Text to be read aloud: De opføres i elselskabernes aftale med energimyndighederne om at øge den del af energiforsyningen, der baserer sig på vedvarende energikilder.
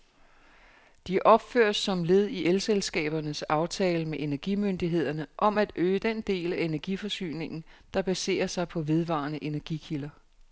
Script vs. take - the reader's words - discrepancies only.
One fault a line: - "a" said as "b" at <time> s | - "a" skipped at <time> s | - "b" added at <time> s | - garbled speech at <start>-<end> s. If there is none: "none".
- "som led" added at 1.8 s